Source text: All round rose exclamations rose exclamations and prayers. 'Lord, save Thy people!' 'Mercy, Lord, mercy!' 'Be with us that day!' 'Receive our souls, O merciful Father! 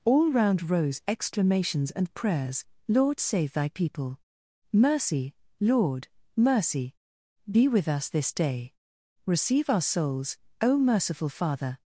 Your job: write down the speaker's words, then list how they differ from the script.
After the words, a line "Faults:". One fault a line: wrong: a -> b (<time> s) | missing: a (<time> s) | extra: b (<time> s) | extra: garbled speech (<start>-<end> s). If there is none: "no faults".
All round rose exclamations and prayers. 'Lord, save Thy people!' 'Mercy, Lord, mercy!' 'Be with us this day!' 'Receive our souls, O merciful Father!
Faults:
missing: rose exclamations (1.9 s)
wrong: that -> this (8.1 s)